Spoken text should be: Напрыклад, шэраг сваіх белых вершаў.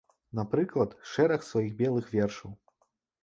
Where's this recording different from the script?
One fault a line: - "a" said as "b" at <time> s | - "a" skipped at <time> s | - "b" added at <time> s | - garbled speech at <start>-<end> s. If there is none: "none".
none